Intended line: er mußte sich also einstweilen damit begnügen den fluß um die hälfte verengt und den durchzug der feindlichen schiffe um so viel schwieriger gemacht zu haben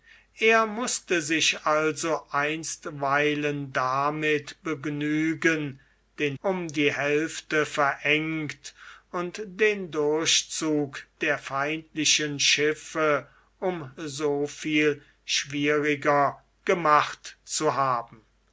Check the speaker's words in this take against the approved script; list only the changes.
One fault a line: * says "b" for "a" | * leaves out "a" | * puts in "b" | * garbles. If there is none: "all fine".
* leaves out "fluß"